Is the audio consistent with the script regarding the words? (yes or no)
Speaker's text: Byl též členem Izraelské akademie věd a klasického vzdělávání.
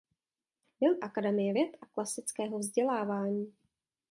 no